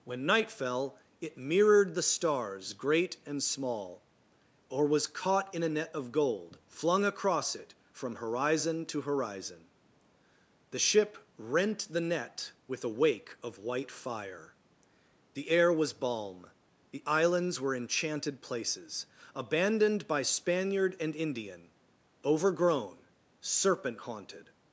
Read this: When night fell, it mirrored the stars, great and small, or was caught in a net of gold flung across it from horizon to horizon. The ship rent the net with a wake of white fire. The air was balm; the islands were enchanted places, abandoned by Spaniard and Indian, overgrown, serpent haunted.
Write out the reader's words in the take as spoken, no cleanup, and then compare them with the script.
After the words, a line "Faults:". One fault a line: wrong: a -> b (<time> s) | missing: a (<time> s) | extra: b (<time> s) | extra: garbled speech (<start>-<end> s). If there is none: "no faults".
When night fell, it mirrored the stars, great and small, or was caught in a net of gold flung across it from horizon to horizon. The ship rent the net with a wake of white fire. The air was balm; the islands were enchanted places, abandoned by Spaniard and Indian, overgrown, serpent haunted.
Faults:
no faults